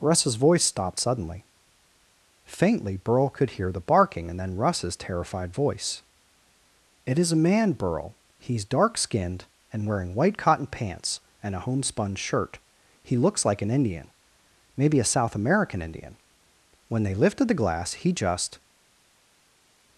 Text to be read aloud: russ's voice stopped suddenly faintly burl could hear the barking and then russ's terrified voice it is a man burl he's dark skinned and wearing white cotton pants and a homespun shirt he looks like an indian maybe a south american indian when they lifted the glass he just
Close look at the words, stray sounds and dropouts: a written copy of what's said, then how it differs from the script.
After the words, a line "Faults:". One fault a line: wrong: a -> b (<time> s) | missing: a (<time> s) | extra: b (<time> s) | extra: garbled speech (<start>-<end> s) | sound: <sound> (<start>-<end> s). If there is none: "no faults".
russ's voice stopped suddenly faintly burl could hear the barking and then russ's terrified voice it is a man burl he's dark skinned and wearing white cotton pants and a homespun shirt he looks like an indian maybe a south american indian when they lifted the glass he just
Faults:
no faults